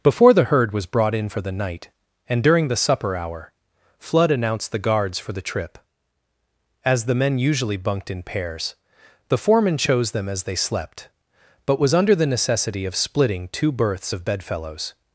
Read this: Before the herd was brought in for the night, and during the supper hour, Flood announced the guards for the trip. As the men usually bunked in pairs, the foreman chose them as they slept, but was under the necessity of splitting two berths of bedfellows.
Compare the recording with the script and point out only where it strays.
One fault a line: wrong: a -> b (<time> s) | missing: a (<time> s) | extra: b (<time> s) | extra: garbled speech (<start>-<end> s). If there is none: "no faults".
no faults